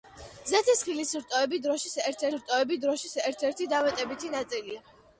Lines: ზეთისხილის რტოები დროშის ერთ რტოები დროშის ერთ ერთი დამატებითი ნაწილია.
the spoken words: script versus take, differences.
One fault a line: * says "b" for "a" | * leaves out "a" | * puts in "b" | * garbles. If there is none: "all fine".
all fine